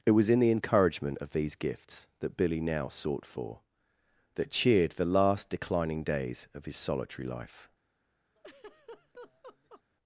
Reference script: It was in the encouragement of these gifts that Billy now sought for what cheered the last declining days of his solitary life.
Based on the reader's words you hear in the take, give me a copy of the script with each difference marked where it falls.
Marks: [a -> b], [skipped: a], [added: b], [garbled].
It was in the encouragement of these gifts that Billy now sought for [what -> that] cheered the last declining days of his solitary life.